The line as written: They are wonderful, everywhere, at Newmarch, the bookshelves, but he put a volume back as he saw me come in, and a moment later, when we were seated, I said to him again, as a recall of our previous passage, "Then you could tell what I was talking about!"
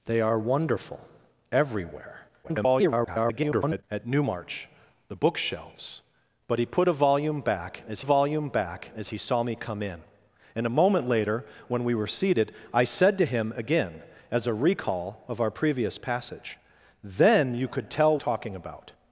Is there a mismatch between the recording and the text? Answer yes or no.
yes